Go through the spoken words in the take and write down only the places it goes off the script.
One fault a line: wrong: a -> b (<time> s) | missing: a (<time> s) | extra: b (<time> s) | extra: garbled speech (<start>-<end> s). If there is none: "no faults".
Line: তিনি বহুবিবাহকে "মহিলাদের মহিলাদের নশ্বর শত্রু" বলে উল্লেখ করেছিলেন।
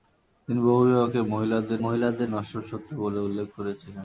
no faults